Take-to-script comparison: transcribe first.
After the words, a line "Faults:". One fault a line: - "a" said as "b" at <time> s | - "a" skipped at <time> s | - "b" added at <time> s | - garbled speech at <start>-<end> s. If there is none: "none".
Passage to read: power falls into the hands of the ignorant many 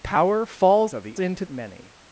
power falls of the into many
Faults:
- "into the hands" skipped at 0.9 s
- "ignorant" said as "into" at 1.2 s